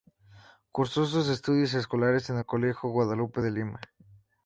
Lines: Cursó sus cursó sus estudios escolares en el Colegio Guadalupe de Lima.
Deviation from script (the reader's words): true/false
true